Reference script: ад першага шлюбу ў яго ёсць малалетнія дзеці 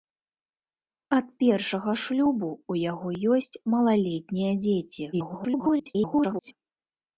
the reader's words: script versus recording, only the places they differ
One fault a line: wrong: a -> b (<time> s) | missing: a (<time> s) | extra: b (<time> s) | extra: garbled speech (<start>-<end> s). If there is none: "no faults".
extra: garbled speech (5.1-6.5 s)